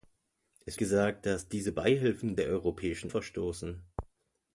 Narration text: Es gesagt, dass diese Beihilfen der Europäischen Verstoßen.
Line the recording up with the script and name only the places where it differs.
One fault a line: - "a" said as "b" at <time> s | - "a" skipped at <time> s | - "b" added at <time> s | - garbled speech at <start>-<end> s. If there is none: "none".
none